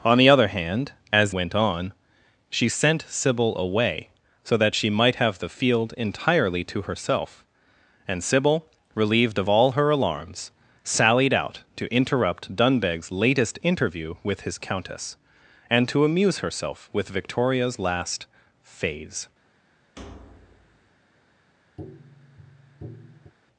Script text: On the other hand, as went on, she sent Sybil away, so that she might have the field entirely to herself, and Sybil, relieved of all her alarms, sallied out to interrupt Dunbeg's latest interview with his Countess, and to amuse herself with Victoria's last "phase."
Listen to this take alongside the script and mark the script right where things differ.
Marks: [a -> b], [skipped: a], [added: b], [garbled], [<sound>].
On the other hand, as went on, she sent Sybil away, so that she might have the field entirely to herself, and Sybil, relieved of all her alarms, sallied out to interrupt Dunbeg's latest interview with his Countess, and to amuse herself with Victoria's last "phase." [thud] [tap]